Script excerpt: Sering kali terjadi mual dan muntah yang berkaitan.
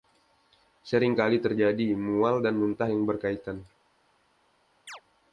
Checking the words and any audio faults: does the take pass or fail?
fail